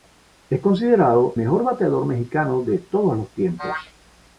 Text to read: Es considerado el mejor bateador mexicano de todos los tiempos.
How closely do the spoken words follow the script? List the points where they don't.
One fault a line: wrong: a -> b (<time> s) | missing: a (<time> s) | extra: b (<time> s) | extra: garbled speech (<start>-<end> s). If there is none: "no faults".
missing: el (1.4 s)